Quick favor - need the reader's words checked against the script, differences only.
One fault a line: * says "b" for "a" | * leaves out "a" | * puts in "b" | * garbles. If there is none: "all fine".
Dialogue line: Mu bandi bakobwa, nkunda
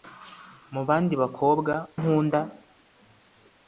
all fine